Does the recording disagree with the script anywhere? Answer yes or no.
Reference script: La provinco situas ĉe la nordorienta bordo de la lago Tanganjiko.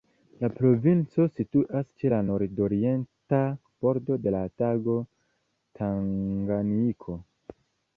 no